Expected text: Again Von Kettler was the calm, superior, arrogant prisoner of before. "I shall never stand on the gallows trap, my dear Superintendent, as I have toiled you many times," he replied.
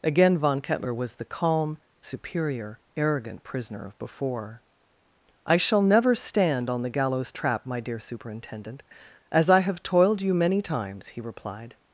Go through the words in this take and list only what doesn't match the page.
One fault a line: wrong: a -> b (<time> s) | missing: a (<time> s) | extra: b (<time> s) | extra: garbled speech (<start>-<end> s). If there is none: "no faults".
no faults